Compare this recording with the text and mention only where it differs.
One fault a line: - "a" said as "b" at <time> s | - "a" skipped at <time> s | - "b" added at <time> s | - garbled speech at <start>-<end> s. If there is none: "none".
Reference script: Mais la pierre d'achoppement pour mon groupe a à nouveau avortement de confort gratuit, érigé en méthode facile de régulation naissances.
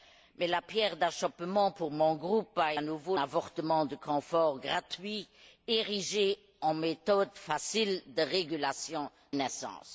none